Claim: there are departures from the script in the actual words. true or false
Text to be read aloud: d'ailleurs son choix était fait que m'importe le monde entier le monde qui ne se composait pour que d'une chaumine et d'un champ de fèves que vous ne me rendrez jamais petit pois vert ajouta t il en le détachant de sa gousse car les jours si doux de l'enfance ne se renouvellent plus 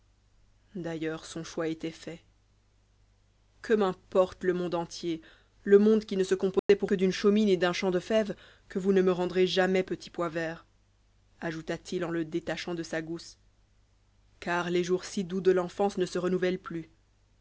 false